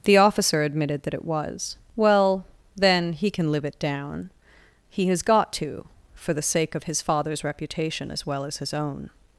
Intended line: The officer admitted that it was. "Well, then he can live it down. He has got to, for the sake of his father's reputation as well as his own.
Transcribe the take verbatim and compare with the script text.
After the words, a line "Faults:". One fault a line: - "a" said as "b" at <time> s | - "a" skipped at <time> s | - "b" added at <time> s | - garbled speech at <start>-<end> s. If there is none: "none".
The officer admitted that it was. "Well, then he can live it down. He has got to, for the sake of his father's reputation as well as his own.
Faults:
none